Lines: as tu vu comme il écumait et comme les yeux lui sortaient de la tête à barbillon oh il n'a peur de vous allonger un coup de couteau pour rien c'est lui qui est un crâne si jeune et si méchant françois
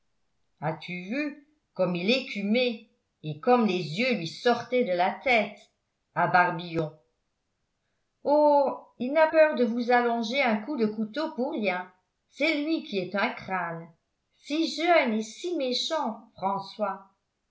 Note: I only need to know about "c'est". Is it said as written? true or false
true